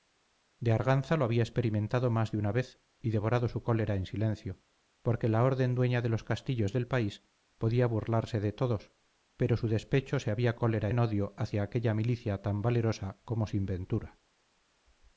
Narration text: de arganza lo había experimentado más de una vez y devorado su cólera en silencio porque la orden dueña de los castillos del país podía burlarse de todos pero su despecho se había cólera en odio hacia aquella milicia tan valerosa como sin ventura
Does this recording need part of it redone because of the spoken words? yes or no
no